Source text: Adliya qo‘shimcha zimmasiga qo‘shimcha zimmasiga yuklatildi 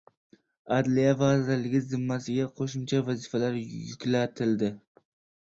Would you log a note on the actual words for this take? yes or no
yes